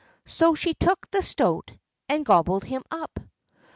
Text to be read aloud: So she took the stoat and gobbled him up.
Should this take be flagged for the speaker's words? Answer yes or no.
no